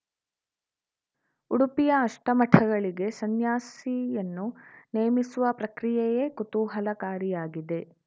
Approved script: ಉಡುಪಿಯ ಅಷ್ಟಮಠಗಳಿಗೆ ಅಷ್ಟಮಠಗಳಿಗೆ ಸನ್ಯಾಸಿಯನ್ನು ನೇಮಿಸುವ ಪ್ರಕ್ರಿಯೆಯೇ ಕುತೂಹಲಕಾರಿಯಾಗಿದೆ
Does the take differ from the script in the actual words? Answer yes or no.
yes